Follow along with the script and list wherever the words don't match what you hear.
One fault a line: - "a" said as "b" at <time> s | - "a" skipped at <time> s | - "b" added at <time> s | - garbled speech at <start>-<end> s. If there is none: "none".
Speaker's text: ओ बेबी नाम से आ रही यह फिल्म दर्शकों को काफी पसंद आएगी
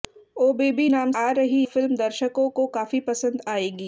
- "से" skipped at 1.1 s
- "यह" skipped at 1.6 s